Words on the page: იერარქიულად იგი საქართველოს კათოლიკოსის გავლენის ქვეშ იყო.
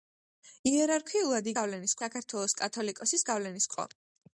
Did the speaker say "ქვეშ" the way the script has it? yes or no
no